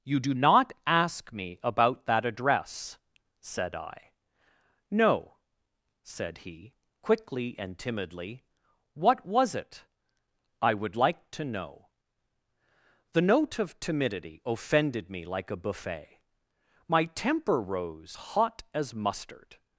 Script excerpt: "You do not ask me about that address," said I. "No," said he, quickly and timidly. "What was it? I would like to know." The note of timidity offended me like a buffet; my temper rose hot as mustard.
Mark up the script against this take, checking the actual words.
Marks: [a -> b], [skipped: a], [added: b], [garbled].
"You do not ask me about that address," said I. "No," said he, quickly and timidly. "What was it? I would like to know." The note of timidity offended me like a buffet; my temper rose hot as mustard.